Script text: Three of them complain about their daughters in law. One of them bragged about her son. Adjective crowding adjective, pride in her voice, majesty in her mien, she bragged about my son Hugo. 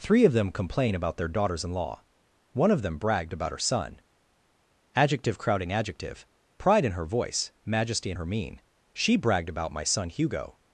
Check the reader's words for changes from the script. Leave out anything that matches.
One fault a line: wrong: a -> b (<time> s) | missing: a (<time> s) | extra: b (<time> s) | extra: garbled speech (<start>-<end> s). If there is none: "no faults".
no faults